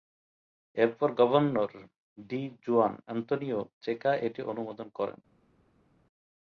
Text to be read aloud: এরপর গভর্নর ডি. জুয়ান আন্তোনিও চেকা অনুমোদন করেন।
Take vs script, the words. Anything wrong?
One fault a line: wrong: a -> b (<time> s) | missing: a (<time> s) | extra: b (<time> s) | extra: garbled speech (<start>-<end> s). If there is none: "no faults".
extra: এটি (4.3 s)